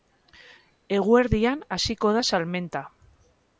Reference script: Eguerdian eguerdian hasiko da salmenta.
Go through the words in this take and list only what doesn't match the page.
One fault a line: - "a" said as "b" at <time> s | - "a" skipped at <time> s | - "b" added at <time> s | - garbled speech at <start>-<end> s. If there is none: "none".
- "eguerdian" skipped at 1.6 s